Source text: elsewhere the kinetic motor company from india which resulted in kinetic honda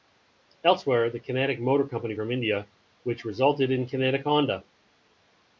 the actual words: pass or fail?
pass